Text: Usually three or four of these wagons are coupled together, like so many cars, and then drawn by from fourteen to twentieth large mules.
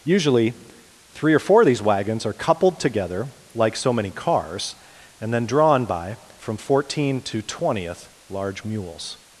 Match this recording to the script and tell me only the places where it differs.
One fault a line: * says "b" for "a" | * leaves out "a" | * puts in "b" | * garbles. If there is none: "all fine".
all fine